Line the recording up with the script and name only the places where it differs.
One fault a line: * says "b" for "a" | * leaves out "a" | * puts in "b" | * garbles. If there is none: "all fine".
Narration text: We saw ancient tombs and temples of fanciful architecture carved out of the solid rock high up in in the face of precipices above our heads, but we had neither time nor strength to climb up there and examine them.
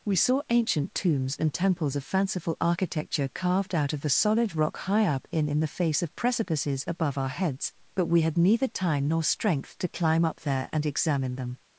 all fine